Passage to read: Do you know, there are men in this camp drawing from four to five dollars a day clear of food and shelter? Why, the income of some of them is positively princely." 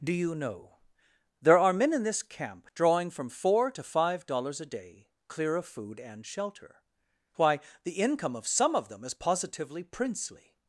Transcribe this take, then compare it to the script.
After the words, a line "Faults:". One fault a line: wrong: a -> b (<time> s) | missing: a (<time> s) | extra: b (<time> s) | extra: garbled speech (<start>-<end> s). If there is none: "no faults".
Do you know, there are men in this camp drawing from four to five dollars a day clear of food and shelter? Why, the income of some of them is positively princely."
Faults:
no faults